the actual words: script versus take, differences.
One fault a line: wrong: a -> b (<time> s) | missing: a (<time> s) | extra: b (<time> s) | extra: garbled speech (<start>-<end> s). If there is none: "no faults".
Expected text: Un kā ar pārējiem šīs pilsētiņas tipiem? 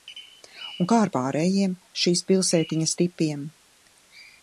no faults